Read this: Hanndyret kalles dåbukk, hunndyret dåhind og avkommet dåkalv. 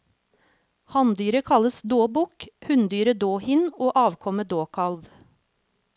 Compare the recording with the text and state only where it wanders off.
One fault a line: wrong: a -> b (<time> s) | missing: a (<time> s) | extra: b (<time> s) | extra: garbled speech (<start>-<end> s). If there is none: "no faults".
no faults